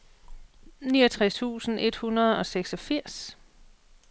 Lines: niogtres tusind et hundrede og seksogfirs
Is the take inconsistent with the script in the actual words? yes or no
no